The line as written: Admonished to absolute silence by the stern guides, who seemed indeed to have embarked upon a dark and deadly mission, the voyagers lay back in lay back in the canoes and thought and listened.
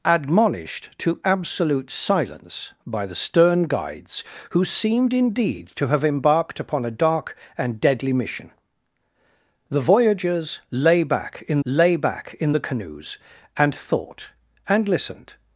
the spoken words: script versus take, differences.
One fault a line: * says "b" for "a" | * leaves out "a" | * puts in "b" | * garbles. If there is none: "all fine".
all fine